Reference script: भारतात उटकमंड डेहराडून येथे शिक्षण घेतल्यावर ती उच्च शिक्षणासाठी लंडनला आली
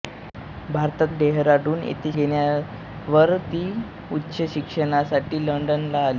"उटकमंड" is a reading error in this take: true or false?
true